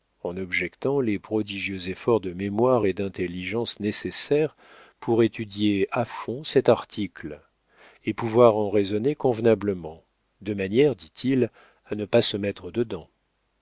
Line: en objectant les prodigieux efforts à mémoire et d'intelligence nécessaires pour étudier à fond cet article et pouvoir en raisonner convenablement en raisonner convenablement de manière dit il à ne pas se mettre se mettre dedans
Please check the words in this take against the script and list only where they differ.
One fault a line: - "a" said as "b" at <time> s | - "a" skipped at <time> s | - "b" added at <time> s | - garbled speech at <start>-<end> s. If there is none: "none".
- "à" said as "de" at 2.2 s
- "en raisonner convenablement" skipped at 10.0 s
- "se mettre" skipped at 12.7 s